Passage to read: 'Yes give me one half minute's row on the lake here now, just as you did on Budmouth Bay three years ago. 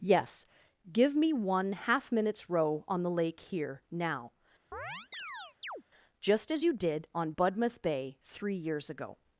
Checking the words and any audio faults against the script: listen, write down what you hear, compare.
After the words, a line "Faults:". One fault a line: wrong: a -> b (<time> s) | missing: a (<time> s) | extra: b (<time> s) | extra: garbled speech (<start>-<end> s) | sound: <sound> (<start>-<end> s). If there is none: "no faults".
'Yes give me one half minute's row on the lake here now, just as you did on Budmouth Bay three years ago.
Faults:
sound: chirp (4.7-5.8 s)